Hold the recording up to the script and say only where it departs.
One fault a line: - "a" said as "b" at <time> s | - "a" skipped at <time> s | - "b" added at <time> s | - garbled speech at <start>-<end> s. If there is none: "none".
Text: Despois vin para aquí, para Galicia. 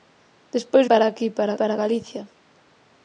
- "vin" skipped at 0.8 s
- "para" added at 1.6 s